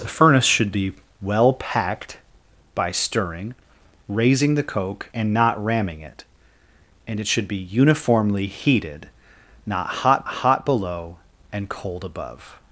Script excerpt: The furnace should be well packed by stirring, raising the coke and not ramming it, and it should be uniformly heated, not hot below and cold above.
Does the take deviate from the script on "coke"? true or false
false